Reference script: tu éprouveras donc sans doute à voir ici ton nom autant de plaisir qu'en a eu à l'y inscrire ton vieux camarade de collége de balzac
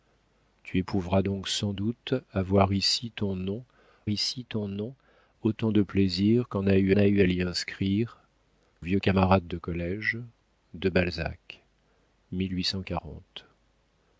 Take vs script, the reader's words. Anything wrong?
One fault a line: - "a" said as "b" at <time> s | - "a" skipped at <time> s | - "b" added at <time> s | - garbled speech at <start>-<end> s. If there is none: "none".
- "ici ton nom" added at 4.1 s
- "a eu" added at 7.0 s
- "ton" skipped at 8.2 s